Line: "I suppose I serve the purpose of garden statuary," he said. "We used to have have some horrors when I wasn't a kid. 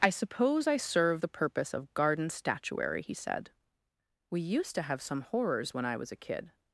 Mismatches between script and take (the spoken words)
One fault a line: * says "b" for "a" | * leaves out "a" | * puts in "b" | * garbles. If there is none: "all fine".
* leaves out "have"
* says "was" for "wasn't"